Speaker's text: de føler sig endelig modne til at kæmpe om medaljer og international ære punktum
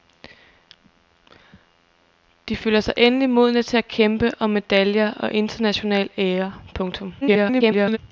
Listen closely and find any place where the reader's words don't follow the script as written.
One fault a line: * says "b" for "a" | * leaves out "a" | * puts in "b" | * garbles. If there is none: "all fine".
* garbles